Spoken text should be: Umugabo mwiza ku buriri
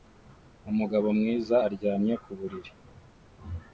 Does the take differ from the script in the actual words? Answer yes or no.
yes